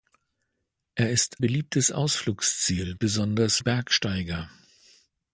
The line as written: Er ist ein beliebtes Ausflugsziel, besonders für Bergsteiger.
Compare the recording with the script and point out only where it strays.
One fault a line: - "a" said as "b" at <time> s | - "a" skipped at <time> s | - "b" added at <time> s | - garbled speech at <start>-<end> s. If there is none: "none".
- "ein" skipped at 1.4 s
- "für" skipped at 3.6 s